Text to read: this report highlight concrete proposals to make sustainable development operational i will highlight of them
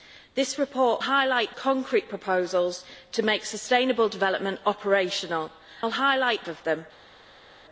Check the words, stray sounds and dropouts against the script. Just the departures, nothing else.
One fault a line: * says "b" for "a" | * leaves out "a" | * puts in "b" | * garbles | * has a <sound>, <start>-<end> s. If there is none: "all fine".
all fine